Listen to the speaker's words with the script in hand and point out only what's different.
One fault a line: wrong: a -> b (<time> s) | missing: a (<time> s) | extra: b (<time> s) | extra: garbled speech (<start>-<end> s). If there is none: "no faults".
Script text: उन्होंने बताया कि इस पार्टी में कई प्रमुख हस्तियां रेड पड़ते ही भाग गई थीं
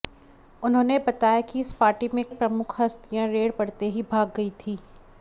missing: कई (2.2 s)